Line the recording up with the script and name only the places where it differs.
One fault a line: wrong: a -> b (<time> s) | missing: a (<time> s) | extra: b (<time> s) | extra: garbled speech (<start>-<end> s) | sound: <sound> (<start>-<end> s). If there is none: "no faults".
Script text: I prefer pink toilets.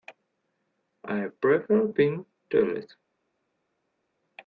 no faults